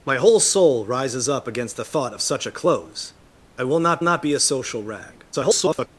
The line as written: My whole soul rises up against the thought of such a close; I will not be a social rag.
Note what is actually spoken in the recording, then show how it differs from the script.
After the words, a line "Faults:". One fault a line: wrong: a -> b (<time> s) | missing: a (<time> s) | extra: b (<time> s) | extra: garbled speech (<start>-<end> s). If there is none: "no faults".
My whole soul rises up against the thought of such a close; I will not not be a social rag. [garbled]
Faults:
extra: not (4.0 s)
extra: garbled speech (5.3-5.9 s)